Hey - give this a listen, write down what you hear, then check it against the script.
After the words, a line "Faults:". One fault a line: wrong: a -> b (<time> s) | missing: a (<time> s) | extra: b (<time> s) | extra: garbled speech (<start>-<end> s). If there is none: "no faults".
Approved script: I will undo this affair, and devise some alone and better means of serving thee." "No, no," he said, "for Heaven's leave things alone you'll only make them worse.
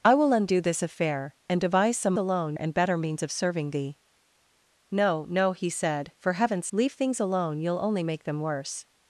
I will undo this affair, and devise some alone and better means of serving thee." "No, no," he said, "for Heaven's leave things alone you'll only make them worse.
Faults:
no faults